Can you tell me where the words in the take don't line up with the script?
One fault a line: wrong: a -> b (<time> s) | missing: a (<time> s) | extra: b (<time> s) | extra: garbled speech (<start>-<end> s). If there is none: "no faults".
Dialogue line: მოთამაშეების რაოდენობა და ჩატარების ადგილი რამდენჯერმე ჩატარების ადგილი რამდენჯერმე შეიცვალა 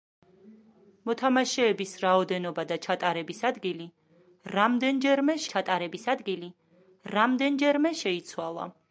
no faults